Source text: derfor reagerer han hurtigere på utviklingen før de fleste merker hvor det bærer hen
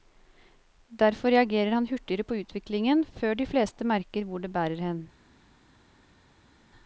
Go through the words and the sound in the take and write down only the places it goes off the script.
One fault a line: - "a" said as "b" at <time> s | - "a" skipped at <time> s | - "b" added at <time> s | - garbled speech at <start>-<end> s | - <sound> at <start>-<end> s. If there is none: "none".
none